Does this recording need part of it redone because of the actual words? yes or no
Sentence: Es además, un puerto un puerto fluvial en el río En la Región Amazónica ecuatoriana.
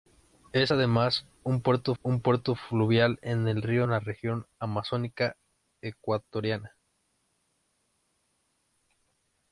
no